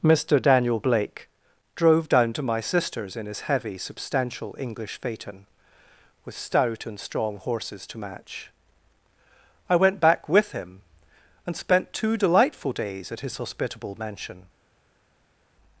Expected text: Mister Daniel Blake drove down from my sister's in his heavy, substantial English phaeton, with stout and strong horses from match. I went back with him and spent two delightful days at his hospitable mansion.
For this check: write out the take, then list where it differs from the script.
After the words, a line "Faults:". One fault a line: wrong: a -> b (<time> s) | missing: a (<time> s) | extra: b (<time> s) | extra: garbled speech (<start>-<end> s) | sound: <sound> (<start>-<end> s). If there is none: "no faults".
Mister Daniel Blake drove down to my sister's in his heavy, substantial English phaeton, with stout and strong horses to match. I went back with him and spent two delightful days at his hospitable mansion.
Faults:
wrong: from -> to (2.3 s)
wrong: from -> to (7.9 s)